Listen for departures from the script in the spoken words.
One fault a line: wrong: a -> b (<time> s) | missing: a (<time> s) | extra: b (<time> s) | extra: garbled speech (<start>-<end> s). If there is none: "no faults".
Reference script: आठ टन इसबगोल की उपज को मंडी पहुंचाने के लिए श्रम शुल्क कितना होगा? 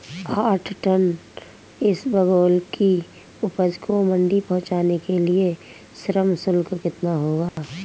no faults